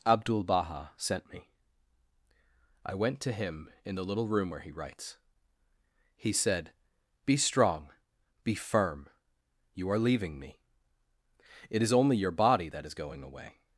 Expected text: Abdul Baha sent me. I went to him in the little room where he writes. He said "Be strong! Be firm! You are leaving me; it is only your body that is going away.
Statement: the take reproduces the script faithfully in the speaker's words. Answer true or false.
true